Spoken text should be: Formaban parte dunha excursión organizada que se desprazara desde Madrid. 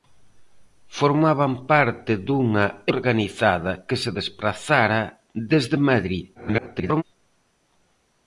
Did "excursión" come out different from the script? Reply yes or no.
yes